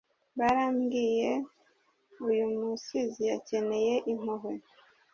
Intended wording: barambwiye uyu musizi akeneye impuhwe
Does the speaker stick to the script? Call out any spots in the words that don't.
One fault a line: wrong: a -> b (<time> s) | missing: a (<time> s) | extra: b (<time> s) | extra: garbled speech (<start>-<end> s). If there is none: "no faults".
no faults